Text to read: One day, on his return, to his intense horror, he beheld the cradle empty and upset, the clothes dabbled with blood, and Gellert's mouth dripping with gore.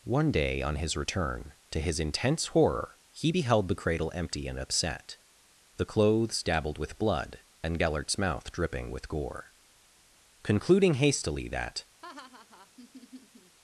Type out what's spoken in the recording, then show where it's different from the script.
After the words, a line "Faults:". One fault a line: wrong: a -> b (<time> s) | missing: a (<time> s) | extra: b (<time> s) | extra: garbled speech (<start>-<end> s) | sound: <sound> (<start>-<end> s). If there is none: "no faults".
One day, on his return, to his intense horror, he beheld the cradle empty and upset, the clothes dabbled with blood, and Gellert's mouth dripping with gore. Concluding hastily that
Faults:
extra: Concluding hastily that (10.4 s)
sound: laugh (12.0-13.6 s)